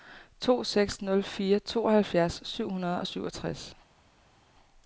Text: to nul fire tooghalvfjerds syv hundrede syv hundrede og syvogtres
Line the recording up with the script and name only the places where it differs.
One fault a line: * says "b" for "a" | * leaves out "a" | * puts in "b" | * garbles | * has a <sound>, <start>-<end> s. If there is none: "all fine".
* puts in "seks"
* leaves out "syv hundrede"